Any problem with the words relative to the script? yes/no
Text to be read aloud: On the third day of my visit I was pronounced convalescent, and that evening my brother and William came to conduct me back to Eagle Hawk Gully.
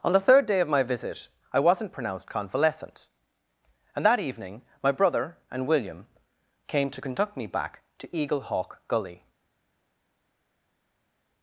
yes